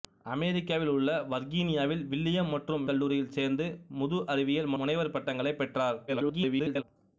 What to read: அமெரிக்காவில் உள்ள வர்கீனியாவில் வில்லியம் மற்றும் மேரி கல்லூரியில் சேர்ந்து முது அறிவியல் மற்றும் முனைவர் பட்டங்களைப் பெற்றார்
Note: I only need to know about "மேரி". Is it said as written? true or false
false